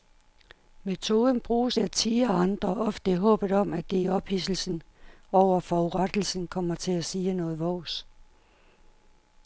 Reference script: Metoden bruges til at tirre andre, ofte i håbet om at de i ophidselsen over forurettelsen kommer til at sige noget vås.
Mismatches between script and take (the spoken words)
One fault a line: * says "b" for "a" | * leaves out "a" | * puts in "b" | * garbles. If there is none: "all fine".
* leaves out "til"